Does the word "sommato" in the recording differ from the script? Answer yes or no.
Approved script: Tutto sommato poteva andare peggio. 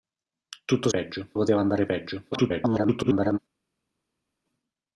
yes